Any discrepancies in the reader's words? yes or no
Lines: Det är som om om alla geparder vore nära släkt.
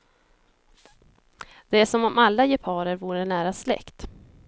yes